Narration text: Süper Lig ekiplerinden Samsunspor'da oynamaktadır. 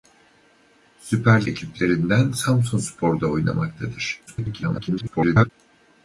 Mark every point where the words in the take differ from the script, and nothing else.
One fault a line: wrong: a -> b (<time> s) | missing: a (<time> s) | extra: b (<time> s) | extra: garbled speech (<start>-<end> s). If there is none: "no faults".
missing: Lig (1.4 s)
extra: garbled speech (4.3-5.5 s)